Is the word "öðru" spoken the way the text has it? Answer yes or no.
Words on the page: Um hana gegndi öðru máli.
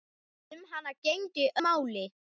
no